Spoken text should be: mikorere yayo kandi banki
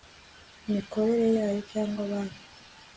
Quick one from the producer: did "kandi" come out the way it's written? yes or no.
no